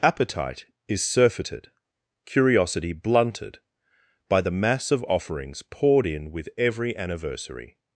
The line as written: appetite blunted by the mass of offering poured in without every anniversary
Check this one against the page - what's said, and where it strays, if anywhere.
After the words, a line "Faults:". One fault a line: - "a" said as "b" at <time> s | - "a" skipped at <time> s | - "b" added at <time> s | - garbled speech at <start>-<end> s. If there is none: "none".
appetite is surfeited curiosity blunted by the mass of offerings poured in with every anniversary
Faults:
- "is surfeited curiosity" added at 0.9 s
- "offering" said as "offerings" at 5.0 s
- "without" said as "with" at 6.3 s